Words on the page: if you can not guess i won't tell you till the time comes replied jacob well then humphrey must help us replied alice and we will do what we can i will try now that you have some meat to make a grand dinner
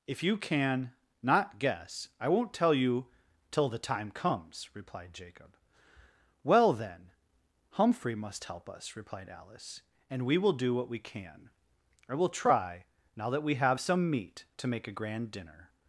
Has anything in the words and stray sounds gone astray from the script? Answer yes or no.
yes